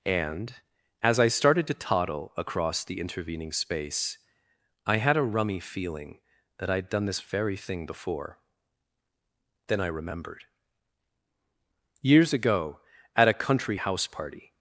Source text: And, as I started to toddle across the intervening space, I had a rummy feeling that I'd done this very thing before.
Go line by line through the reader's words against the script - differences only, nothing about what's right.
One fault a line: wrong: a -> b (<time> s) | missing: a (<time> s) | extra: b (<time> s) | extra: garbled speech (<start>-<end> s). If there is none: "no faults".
extra: Then I remembered Years ago at a country house party (9.7 s)